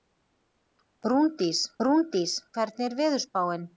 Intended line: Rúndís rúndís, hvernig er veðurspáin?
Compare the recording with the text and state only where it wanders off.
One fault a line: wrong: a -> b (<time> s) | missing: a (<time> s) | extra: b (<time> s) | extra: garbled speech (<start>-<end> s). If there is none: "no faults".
no faults